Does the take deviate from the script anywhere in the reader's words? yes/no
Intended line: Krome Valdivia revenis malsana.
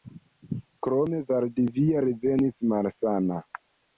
no